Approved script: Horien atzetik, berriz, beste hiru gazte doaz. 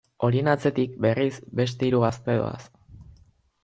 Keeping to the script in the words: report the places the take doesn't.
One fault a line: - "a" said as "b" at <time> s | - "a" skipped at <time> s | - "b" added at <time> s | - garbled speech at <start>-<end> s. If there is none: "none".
none